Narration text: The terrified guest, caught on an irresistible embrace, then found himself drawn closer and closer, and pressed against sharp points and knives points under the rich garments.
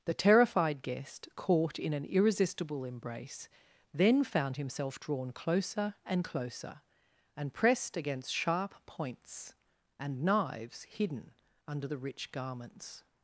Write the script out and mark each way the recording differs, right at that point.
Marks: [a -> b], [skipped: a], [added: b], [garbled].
The terrified guest, caught [on -> in] an irresistible embrace, then found himself drawn closer and closer, and pressed against sharp points and knives [points -> hidden] under the rich garments.